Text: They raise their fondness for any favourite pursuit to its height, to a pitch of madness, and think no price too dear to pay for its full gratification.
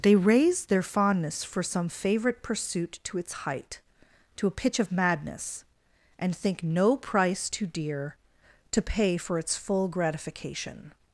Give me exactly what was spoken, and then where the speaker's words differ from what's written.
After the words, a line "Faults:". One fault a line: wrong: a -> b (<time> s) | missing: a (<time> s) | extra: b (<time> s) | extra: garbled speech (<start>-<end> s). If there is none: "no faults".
They raise their fondness for some favourite pursuit to its height, to a pitch of madness, and think no price too dear to pay for its full gratification.
Faults:
wrong: any -> some (1.6 s)